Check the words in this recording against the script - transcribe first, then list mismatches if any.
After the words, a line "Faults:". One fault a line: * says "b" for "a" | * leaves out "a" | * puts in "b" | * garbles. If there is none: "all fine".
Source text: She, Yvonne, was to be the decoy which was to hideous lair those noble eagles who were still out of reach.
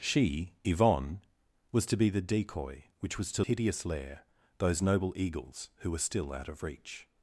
She, Yvonne, was to be the decoy which was to hideous lair those noble eagles who were still out of reach.
Faults:
all fine